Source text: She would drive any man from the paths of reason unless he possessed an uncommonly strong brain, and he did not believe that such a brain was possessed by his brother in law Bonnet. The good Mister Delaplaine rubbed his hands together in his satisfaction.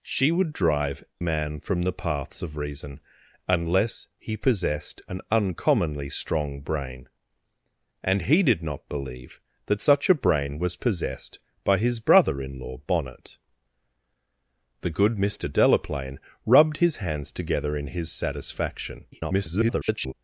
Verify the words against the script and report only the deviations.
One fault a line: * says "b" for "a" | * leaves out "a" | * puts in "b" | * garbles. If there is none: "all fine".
* leaves out "any"
* garbles